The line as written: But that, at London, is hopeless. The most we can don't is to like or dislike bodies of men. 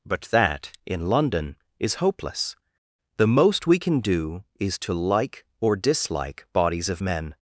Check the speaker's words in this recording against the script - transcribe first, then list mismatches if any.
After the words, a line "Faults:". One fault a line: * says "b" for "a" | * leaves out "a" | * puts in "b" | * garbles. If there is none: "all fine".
But that, in London, is hopeless. The most we can do is to like or dislike bodies of men.
Faults:
* says "in" for "at"
* says "do" for "don't"